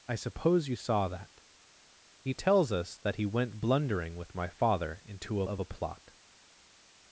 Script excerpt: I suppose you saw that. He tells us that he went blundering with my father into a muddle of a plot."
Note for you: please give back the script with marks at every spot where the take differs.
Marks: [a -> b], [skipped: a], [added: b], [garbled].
I suppose you saw that. He tells us that he went blundering with my father into a [skipped: muddle] of a plot."